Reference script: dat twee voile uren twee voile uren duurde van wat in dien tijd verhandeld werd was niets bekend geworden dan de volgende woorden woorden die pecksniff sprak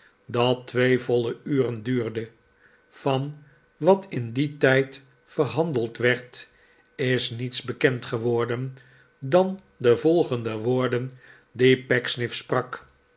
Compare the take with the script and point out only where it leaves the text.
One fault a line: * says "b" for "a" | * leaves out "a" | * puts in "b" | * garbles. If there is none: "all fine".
* leaves out "twee voile uren"
* says "is" for "was"
* leaves out "woorden"